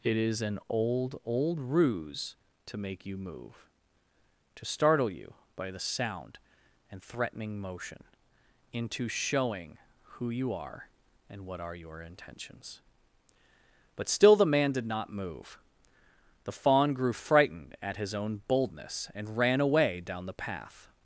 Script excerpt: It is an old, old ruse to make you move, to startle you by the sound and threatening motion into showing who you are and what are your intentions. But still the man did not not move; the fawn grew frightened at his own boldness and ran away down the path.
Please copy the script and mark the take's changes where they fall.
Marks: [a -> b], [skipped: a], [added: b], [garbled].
It is an old, old ruse to make you move, to startle you by the sound and threatening motion into showing who you are and what are your intentions. But still the man did not [skipped: not] move; the fawn grew frightened at his own boldness and ran away down the path.